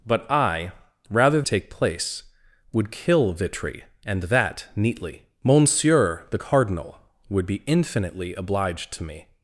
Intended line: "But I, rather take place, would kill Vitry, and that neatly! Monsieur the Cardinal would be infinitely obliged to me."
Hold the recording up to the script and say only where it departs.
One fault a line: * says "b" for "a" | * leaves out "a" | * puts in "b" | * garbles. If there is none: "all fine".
all fine